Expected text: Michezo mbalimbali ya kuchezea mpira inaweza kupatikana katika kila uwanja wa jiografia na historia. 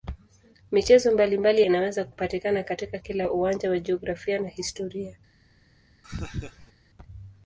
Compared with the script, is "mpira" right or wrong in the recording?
wrong